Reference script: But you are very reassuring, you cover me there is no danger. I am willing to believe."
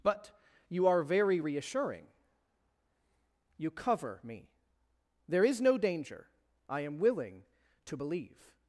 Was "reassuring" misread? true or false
false